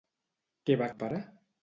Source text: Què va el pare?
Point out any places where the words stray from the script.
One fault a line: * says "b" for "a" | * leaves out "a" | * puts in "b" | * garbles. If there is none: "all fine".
all fine